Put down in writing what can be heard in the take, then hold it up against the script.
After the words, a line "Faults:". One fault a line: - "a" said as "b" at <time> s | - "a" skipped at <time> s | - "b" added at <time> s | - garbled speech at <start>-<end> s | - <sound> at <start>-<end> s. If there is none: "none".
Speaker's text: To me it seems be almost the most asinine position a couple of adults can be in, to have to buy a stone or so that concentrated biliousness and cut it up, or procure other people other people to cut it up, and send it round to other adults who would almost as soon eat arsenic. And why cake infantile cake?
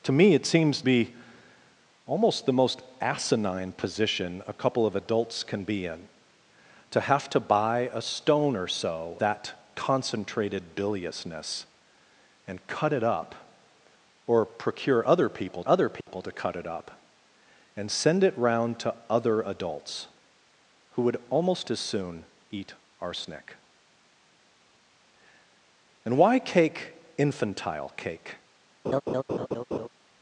To me it seems be almost the most asinine position a couple of adults can be in, to have to buy a stone or so that concentrated biliousness and cut it up, or procure other people other people to cut it up, and send it round to other adults who would almost as soon eat arsenic. And why cake infantile cake?
Faults:
- dropout at 16.0-16.1 s
- laugh at 28.8-29.9 s